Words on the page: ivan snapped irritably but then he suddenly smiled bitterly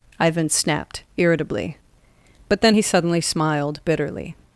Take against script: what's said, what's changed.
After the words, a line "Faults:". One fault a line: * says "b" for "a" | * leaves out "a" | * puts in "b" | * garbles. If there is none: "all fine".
ivan snapped irritably but then he suddenly smiled bitterly
Faults:
all fine